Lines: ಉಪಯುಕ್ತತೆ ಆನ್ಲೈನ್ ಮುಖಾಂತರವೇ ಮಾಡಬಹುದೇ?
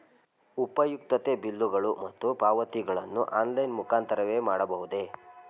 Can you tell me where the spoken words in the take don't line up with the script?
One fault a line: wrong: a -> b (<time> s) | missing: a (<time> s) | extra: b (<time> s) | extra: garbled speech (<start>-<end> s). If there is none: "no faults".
extra: ಬಿಲ್ಲುಗಳು ಮತ್ತು ಪಾವತಿಗಳನ್ನು (1.4 s)